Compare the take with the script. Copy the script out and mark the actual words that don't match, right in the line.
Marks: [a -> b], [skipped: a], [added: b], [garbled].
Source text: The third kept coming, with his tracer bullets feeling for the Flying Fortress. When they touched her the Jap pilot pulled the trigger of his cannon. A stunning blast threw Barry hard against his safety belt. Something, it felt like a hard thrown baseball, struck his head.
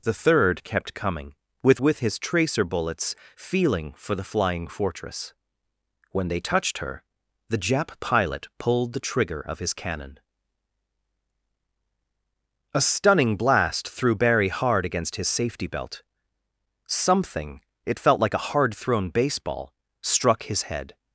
The third kept coming, with [added: with] his tracer bullets feeling for the Flying Fortress. When they touched her the Jap pilot pulled the trigger of his cannon. A stunning blast threw Barry hard against his safety belt. Something, it felt like a hard thrown baseball, struck his head.